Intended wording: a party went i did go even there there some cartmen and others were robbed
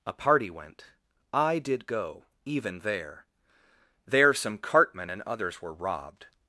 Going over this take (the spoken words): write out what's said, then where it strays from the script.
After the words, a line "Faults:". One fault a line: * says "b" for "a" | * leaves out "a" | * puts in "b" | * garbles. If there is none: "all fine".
a party went i did go even there there some cartmen and others were robbed
Faults:
all fine